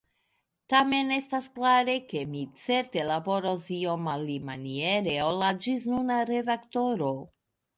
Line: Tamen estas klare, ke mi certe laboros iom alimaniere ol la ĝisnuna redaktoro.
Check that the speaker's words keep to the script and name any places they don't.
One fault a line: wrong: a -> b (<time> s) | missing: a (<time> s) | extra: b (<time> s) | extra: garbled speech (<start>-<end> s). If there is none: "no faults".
no faults